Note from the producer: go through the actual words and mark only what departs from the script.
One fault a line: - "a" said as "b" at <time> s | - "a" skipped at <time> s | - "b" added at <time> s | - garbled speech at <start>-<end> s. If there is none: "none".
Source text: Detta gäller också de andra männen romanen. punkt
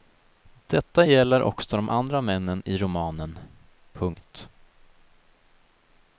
- "i" added at 2.7 s